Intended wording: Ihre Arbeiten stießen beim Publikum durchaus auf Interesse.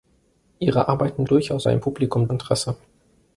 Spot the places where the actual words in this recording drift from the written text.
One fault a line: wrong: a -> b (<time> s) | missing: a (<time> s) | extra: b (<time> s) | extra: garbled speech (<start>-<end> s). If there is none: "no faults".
wrong: stießen -> durchaus (1.3 s)
missing: durchaus auf (2.3 s)